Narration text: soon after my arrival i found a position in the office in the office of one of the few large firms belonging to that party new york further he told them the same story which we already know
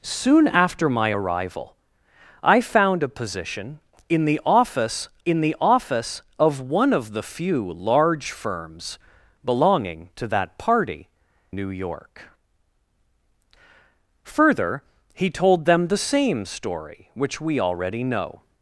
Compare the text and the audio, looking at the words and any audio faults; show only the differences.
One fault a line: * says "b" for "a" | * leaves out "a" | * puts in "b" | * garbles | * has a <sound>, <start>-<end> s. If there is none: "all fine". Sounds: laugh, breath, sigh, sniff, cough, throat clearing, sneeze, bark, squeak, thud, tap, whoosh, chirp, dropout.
all fine